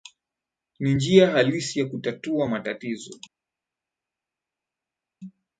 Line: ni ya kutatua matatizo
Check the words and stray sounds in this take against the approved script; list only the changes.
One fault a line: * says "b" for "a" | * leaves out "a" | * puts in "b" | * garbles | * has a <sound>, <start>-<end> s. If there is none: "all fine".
* puts in "njia halisi"